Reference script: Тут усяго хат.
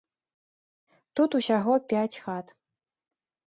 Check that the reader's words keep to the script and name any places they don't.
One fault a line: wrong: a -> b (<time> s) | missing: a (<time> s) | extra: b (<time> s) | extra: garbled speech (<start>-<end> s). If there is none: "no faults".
extra: пяць (1.9 s)